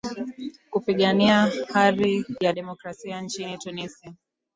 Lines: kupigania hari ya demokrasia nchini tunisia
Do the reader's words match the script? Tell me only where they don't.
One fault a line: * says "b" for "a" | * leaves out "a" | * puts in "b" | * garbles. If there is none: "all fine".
all fine